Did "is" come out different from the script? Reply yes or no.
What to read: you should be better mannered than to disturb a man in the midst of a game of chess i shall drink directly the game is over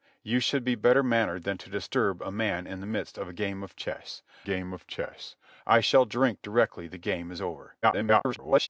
no